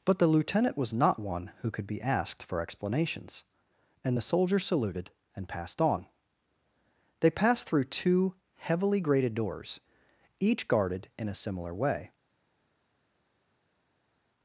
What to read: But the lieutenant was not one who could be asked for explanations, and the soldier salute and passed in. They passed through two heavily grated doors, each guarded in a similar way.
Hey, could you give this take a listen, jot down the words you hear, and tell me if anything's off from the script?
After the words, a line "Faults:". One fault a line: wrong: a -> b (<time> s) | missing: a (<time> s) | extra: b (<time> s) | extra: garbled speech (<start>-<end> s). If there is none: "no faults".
But the lieutenant was not one who could be asked for explanations, and the soldier saluted and passed on. They passed through two heavily grated doors, each guarded in a similar way.
Faults:
wrong: salute -> saluted (4.6 s)
wrong: in -> on (5.8 s)